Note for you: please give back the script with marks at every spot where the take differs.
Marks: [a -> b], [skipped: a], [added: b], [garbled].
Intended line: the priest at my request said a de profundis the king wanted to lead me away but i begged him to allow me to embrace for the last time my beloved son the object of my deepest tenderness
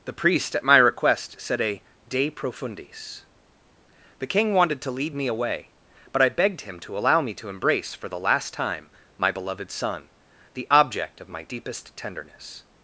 the priest at my request said a de profundis the king wanted to lead me away but i begged him to allow me to embrace for the last time my beloved son the object of my deepest tenderness